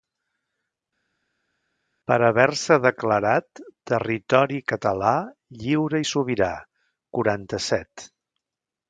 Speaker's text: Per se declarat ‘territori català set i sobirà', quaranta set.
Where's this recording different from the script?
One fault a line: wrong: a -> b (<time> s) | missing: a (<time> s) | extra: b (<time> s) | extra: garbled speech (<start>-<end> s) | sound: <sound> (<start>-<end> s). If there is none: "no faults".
extra: haver (2.3 s)
wrong: set -> lliure (5.6 s)